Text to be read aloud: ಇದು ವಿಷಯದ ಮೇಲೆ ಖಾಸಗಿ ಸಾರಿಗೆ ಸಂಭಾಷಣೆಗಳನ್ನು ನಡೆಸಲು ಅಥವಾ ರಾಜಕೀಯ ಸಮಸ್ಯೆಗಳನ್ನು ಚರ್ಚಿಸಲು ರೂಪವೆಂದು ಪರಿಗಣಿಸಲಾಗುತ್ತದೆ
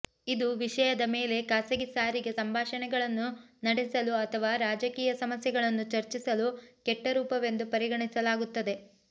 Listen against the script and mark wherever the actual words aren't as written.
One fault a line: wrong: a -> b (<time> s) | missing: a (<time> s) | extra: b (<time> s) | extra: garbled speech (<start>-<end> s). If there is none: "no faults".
extra: ಕೆಟ್ಟ (6.9 s)